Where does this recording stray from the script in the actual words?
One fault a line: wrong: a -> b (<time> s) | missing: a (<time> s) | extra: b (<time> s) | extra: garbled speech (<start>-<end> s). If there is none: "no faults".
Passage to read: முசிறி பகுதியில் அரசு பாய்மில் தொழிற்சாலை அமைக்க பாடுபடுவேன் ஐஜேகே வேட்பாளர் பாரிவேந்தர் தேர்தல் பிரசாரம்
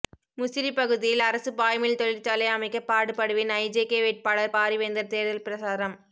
no faults